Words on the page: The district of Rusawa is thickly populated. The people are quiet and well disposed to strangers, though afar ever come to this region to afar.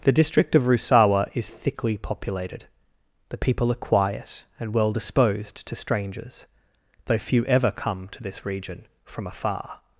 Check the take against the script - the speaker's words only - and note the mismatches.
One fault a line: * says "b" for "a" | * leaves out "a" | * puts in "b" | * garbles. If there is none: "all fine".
* says "few" for "afar"
* says "from" for "to"